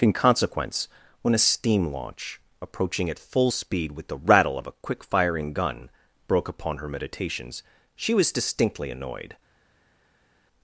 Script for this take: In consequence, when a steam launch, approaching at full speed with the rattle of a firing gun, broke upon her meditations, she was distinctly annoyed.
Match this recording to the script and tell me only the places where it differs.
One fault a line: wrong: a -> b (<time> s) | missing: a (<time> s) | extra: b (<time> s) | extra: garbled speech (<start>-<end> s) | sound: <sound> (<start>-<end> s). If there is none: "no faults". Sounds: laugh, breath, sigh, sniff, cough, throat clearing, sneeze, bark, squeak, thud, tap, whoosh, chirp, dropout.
extra: quick (4.7 s)